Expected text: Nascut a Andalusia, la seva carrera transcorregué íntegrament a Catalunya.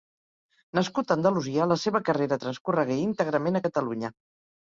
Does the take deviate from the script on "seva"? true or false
false